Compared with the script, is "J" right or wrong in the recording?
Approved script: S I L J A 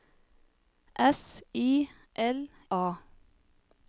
wrong